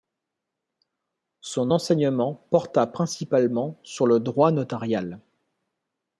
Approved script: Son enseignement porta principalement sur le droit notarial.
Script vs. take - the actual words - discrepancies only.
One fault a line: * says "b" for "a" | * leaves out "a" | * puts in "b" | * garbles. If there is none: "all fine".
all fine